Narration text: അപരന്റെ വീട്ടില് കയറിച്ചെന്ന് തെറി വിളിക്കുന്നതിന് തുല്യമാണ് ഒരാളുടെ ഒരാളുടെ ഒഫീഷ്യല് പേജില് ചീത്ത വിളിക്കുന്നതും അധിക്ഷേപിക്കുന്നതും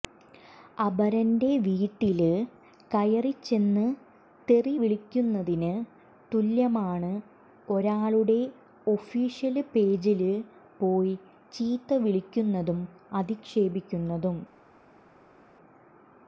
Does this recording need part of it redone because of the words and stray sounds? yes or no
yes